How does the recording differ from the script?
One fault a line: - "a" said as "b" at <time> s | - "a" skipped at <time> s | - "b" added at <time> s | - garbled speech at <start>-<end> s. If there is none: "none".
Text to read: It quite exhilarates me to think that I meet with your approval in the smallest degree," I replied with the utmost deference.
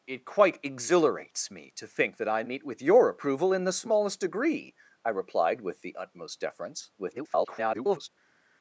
- garbled speech at 7.0-8.1 s